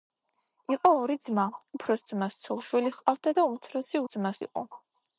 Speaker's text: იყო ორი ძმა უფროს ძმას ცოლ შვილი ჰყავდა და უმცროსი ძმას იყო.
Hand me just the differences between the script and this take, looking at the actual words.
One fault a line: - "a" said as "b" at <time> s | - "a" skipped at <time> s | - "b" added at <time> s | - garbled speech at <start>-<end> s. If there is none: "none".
none